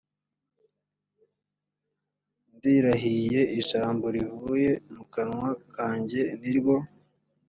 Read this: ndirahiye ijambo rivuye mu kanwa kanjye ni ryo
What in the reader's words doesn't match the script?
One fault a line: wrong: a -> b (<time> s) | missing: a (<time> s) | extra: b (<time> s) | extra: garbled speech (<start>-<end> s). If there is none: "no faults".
no faults